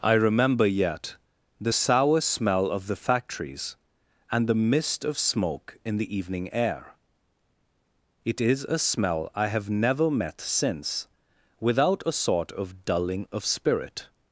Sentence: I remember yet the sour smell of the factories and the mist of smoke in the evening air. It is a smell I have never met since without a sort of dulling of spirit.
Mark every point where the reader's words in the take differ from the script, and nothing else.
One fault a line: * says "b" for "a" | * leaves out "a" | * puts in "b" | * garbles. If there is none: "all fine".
all fine